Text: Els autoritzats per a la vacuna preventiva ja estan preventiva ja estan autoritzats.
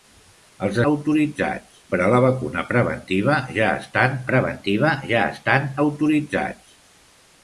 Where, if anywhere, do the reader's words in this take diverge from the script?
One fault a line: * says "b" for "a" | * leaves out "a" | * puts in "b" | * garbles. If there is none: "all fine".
all fine